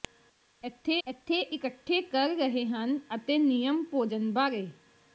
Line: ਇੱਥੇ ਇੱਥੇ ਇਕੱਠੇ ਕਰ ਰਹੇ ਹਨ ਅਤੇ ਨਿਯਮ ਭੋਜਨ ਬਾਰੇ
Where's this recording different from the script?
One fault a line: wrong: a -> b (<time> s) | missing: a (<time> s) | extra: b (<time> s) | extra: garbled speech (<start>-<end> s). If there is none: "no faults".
no faults